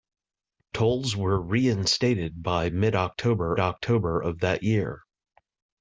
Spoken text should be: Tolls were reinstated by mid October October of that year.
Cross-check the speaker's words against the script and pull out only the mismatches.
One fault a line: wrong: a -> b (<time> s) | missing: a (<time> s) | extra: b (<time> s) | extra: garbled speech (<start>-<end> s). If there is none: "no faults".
no faults